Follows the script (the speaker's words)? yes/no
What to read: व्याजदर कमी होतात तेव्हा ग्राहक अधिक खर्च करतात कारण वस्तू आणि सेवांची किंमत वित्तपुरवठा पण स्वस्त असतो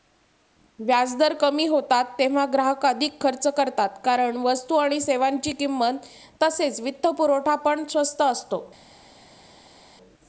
no